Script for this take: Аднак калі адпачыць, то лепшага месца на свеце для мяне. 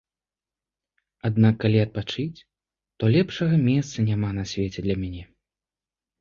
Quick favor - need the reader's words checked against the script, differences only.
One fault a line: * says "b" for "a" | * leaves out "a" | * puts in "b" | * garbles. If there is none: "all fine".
* puts in "няма"